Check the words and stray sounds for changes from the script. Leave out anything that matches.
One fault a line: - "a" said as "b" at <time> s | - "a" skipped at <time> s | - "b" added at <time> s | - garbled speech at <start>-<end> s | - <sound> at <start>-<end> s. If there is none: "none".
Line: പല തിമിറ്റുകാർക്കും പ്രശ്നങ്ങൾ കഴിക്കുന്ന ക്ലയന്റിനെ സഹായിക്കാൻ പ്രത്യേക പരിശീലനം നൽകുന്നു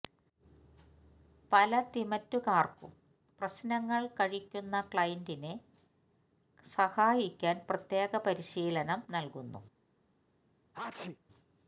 - sneeze at 10.7-11.2 s